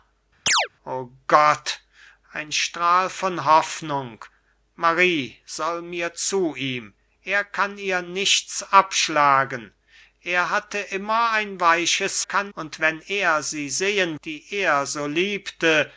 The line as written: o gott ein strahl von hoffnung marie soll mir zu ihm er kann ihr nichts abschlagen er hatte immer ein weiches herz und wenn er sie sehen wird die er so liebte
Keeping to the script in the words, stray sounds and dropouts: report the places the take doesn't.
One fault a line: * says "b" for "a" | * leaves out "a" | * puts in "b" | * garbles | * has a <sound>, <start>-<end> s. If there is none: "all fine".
* has a chirp, 0.5-0.7 s
* says "kann" for "herz"
* leaves out "wird"